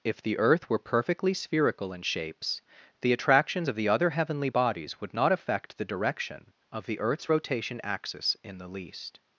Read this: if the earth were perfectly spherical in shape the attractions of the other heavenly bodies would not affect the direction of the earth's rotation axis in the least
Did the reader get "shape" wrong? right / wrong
wrong